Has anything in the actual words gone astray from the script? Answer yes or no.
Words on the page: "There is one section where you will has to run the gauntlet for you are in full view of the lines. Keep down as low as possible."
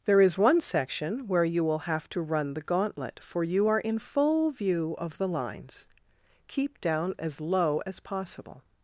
yes